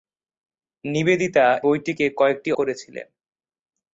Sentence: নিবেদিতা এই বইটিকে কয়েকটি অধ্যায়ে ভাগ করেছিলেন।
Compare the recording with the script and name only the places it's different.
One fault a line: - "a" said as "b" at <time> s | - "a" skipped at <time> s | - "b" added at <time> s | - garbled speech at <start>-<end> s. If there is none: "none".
- "এই" skipped at 1.4 s
- "অধ্যায়ে ভাগ" skipped at 2.5 s